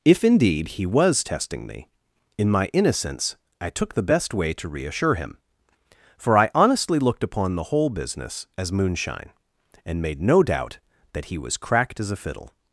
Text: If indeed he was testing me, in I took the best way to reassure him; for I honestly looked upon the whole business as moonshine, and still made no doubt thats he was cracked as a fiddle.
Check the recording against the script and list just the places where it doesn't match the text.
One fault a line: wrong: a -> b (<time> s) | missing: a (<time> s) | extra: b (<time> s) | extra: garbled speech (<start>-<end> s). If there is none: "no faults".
extra: my innocence (2.5 s)
missing: still (10.0 s)
wrong: thats -> that (11.1 s)